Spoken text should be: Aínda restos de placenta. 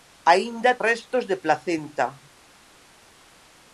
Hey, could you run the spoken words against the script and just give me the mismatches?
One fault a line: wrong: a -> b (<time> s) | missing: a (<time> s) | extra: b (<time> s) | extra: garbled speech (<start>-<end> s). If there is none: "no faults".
no faults